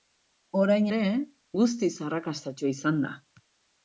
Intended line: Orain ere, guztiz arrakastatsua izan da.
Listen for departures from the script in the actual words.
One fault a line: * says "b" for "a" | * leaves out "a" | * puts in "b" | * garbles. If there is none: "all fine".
all fine